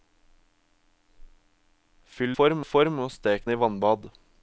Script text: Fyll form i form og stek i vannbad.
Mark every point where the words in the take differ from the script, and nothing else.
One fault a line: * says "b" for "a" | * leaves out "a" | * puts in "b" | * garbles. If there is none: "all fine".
all fine